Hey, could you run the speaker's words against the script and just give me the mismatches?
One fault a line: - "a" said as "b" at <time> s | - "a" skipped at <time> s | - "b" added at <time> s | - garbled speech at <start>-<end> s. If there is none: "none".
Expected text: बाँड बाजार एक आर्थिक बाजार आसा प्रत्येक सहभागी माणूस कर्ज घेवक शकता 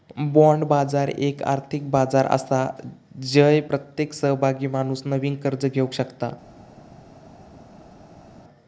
- "जय" added at 3.2 s
- "नवीन" added at 5.1 s